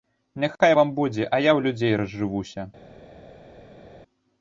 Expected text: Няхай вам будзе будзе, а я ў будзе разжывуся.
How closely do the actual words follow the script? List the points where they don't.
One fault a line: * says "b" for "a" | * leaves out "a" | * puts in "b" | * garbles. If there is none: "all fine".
* leaves out "будзе"
* says "людзей" for "будзе"